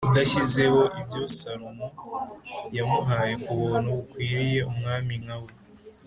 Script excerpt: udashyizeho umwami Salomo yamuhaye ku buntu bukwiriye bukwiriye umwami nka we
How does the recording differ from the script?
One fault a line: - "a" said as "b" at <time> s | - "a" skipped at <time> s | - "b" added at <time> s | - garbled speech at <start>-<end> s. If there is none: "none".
- "umwami" said as "ibyo" at 1.0 s
- "bukwiriye" skipped at 4.6 s